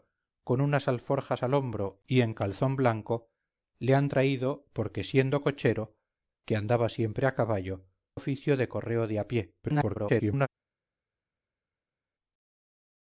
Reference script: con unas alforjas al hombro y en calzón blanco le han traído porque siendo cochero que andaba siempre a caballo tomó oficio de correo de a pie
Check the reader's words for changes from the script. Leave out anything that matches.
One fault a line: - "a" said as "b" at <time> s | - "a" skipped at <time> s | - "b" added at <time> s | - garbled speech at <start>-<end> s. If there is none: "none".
- "tomó" skipped at 7.9 s
- garbled speech at 9.6-10.5 s